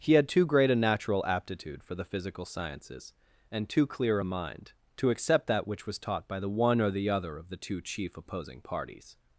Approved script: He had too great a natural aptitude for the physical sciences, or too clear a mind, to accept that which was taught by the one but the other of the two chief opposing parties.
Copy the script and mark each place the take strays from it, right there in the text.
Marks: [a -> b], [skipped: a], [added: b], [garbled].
He had too great a natural aptitude for the physical sciences, [or -> and] too clear a mind, to accept that which was taught by the one [but -> or] the other of the two chief opposing parties.